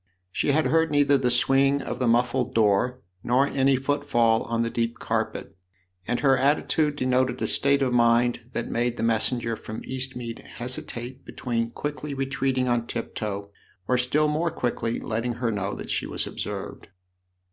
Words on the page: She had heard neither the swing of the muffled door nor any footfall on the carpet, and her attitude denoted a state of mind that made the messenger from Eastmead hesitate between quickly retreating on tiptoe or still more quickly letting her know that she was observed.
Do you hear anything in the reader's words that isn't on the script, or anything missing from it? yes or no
yes